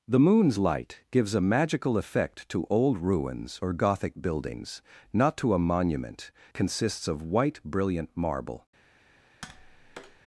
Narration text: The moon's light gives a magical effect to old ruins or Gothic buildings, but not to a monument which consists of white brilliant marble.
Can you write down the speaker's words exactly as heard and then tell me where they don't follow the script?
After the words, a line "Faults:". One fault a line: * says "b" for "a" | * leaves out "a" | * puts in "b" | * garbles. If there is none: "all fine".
The moon's light gives a magical effect to old ruins or Gothic buildings, not to a monument consists of white brilliant marble.
Faults:
* leaves out "but"
* leaves out "which"